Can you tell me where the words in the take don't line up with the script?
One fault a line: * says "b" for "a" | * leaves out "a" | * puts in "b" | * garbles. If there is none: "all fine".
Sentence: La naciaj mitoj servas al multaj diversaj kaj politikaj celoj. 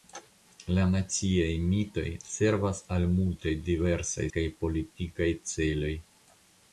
all fine